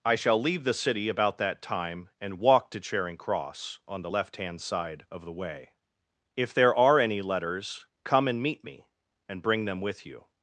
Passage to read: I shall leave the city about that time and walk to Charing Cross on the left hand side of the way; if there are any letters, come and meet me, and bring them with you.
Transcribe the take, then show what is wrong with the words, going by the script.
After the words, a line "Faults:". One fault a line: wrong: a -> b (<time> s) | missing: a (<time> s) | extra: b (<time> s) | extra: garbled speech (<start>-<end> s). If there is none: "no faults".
I shall leave the city about that time and walk to Charing Cross on the left hand side of the way; if there are any letters, come and meet me, and bring them with you.
Faults:
no faults